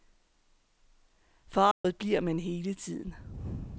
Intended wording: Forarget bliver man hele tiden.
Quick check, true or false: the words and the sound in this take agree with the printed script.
false